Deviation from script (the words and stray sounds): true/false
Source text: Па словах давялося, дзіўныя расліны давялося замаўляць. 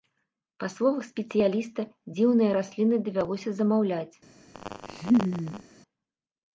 true